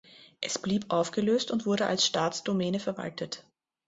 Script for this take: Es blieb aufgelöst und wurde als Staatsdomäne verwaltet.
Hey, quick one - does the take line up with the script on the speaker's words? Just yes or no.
yes